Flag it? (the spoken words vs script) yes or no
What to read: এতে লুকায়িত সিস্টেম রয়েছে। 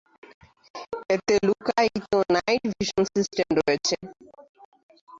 yes